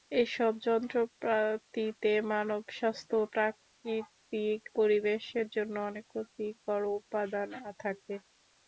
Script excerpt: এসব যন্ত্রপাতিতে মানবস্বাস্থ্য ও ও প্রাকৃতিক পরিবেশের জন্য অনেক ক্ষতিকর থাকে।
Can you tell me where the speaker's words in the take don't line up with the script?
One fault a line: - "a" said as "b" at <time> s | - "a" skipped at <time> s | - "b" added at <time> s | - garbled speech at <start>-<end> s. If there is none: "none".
- "ও" skipped at 3.3 s
- "উপাদান" added at 7.0 s